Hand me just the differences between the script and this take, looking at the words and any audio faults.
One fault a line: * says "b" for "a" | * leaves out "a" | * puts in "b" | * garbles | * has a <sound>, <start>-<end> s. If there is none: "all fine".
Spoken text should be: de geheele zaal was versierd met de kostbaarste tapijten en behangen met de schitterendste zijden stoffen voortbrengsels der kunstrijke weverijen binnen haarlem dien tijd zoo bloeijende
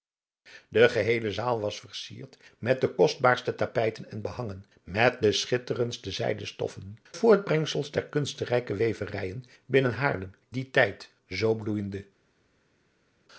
all fine